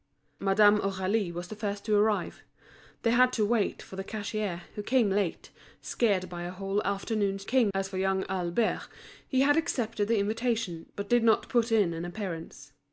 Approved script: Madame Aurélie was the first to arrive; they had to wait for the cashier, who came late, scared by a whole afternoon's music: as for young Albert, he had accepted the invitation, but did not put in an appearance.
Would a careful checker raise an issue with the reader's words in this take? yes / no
yes